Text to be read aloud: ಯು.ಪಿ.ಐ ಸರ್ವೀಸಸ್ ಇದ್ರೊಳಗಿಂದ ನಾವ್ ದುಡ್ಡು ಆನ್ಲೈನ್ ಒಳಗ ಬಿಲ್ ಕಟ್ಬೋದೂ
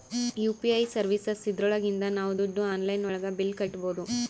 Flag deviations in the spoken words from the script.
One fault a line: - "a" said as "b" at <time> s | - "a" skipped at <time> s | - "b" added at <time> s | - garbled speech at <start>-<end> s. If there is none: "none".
none